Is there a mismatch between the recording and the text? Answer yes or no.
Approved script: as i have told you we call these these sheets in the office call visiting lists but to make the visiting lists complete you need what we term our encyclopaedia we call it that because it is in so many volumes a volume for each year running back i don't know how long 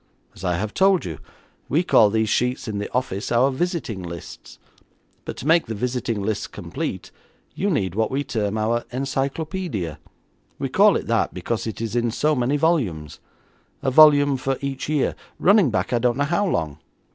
yes